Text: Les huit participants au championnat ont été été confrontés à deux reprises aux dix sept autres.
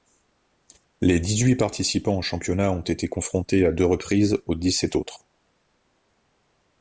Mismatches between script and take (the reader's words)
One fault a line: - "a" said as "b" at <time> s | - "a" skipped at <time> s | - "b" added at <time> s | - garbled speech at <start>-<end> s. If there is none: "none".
- "dix" added at 1.2 s
- "été" skipped at 3.1 s